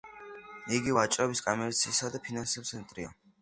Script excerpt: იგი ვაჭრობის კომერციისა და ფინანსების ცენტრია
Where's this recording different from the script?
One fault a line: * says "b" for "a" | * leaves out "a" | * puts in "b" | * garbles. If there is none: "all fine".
all fine